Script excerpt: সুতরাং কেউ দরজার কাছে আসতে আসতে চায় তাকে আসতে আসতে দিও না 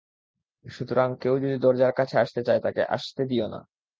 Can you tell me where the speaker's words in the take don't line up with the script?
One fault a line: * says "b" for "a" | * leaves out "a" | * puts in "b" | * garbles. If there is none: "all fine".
* puts in "যদি"
* leaves out "আসতে"
* leaves out "আসতে"